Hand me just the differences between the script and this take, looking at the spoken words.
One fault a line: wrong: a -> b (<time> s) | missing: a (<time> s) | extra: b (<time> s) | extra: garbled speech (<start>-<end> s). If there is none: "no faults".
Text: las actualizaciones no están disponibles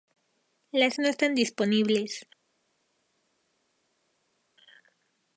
missing: actualizaciones (1.0 s)